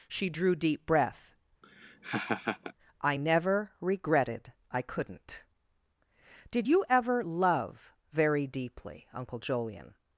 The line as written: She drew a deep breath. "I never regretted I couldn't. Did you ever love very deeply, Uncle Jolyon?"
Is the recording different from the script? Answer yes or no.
yes